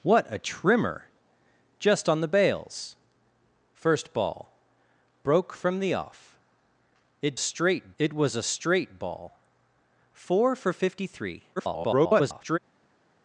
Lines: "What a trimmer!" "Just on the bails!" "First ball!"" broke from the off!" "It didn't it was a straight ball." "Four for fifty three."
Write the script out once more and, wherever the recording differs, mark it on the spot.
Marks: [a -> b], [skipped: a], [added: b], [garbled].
"What a trimmer!" "Just on the bails!" "First ball!"" broke from the off!" "It [didn't -> straight] it was a straight ball." "Four for fifty three." [garbled]